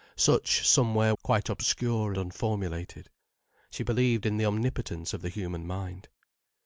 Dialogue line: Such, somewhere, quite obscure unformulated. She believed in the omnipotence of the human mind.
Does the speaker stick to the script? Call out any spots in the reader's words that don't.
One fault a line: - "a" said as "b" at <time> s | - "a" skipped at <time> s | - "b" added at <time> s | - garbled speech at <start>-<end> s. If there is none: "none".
none